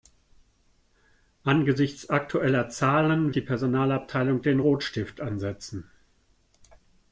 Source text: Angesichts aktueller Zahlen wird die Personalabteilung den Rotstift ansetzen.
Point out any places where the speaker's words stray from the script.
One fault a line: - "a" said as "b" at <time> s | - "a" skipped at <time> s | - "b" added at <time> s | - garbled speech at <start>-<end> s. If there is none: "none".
- "wird" skipped at 3.3 s